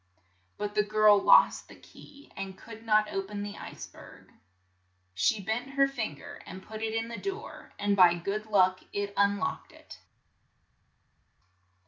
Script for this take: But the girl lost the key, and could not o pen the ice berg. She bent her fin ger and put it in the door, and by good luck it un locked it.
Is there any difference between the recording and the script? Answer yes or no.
no